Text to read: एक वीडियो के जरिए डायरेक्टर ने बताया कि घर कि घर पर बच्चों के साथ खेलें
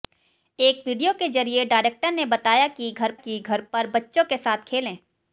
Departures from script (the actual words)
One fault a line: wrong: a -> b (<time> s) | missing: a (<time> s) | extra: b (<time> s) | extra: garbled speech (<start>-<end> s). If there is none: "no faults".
no faults